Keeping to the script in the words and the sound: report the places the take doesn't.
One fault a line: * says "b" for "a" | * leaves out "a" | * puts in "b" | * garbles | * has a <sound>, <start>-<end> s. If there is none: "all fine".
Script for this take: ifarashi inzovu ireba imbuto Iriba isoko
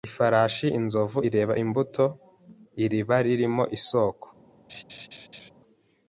* puts in "ririmo"
* has a laugh, 4.7-5.5 s